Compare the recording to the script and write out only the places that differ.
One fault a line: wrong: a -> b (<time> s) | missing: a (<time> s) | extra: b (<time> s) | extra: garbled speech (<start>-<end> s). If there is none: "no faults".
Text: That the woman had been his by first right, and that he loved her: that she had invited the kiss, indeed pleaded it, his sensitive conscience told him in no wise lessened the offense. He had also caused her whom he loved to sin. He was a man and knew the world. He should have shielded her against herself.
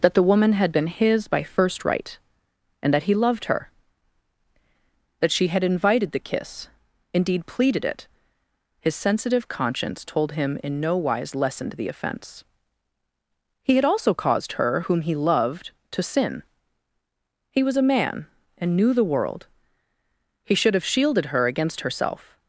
no faults